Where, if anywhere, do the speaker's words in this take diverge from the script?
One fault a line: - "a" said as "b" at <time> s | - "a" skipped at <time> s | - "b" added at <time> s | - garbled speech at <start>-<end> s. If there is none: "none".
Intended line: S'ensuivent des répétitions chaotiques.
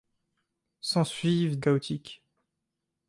- "des répétitions" skipped at 1.6 s